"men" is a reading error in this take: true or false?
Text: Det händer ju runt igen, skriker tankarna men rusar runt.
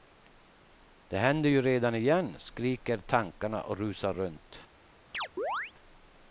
true